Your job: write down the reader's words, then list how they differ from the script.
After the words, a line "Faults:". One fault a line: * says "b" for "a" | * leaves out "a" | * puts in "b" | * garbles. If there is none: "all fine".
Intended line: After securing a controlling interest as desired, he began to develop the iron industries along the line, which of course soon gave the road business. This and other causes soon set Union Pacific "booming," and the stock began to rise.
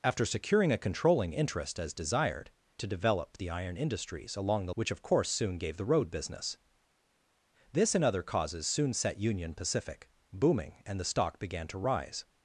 After securing a controlling interest as desired, to develop the iron industries along the which of course soon gave the road business. This and other causes soon set Union Pacific "booming," and the stock began to rise.
Faults:
* leaves out "he began"
* leaves out "line"